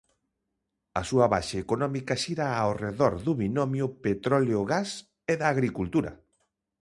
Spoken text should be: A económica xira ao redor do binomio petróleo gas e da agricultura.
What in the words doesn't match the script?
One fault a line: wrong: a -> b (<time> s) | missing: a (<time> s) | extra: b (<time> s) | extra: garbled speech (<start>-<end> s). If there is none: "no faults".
extra: súa base (1.1 s)